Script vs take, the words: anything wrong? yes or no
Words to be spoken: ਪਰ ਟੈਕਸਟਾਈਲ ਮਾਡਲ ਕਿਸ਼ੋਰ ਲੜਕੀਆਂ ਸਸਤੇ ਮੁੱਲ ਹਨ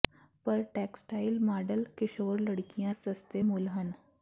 no